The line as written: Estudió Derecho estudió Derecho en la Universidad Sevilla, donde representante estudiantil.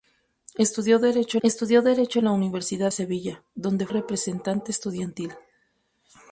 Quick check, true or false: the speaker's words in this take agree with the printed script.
true